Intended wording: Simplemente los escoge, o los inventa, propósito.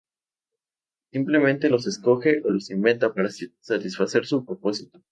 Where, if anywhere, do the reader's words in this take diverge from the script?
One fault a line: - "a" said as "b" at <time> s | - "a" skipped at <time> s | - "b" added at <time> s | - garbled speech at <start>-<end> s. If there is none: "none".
- "para satisfacer su" added at 3.1 s